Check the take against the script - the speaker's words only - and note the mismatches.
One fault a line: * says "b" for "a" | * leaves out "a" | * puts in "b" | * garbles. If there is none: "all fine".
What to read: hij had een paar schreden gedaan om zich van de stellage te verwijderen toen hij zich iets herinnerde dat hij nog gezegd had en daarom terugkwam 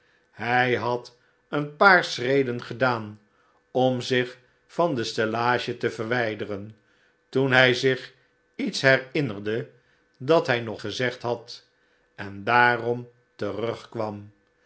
all fine